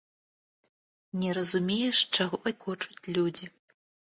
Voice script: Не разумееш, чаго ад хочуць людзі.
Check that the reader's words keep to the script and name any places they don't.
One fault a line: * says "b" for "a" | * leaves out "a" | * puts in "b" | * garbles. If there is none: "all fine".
all fine